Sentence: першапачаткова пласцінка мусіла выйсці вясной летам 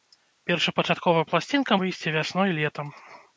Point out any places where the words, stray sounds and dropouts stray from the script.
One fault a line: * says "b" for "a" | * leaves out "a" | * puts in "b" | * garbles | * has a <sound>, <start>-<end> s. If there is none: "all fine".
* leaves out "мусіла"